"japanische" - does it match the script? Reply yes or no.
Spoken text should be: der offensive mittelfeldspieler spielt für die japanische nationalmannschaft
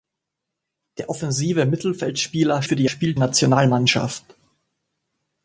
no